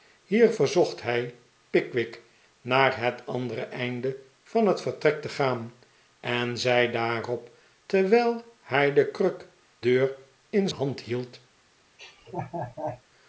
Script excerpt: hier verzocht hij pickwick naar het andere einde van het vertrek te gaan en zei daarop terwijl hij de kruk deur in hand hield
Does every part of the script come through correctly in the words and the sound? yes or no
no